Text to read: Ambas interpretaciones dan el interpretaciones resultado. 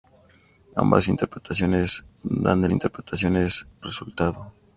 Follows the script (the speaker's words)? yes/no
yes